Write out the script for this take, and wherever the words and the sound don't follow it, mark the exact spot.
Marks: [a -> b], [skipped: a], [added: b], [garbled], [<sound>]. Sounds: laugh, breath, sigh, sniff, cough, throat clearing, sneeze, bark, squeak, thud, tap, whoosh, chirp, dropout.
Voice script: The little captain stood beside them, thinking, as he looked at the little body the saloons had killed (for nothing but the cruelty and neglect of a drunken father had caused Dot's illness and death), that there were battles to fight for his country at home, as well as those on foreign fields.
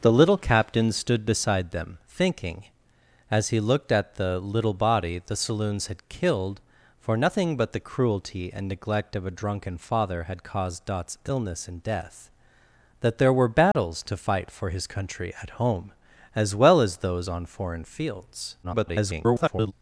The little captain stood beside them, thinking, as he looked at the little body the saloons had killed (for nothing but the cruelty and neglect of a drunken father had caused Dot's illness and death), that there were battles [dropout] to fight for his country at home, as well as those on foreign fields. [garbled]